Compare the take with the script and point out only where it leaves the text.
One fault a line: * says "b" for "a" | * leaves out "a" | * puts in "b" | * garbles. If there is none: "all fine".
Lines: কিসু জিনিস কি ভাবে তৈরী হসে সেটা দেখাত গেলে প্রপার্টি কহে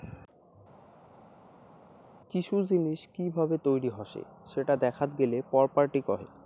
all fine